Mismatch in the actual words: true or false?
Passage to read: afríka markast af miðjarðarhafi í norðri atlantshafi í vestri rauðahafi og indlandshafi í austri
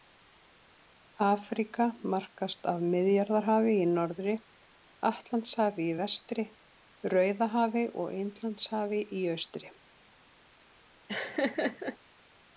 false